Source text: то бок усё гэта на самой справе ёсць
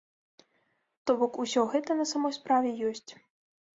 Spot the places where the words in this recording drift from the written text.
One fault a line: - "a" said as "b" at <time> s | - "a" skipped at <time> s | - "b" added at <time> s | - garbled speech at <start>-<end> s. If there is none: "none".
none